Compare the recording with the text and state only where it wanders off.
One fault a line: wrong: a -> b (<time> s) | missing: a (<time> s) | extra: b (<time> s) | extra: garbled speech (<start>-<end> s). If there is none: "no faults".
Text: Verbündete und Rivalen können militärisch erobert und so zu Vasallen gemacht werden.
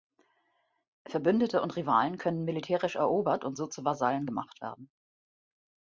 no faults